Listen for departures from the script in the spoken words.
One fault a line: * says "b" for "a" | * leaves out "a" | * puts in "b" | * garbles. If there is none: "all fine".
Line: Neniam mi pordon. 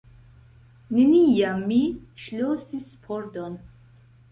* puts in "ŝlosis"